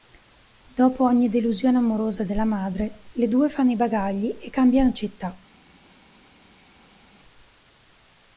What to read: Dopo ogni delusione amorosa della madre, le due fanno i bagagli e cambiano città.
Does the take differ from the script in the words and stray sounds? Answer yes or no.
no